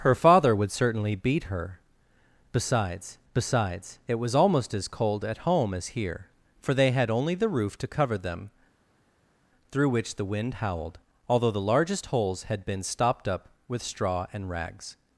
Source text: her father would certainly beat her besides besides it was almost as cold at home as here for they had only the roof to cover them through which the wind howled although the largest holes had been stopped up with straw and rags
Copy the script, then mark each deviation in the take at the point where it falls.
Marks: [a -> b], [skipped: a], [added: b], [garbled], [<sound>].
her father would certainly beat her besides besides it was almost as cold at home as here for they had only the roof to cover them through which the wind howled although the largest holes had been stopped up with straw and rags